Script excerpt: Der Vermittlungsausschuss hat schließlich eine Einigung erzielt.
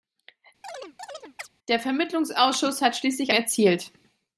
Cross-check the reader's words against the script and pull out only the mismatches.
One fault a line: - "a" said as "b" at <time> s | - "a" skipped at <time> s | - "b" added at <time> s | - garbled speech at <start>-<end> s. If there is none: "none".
- "eine Einigung" skipped at 3.3 s